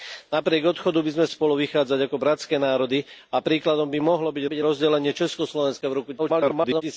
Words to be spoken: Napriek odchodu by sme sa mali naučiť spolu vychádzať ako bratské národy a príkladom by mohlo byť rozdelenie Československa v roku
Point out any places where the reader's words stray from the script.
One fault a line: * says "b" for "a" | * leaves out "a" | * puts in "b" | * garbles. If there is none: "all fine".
* leaves out "sa mali naučiť"
* puts in "byť"
* garbles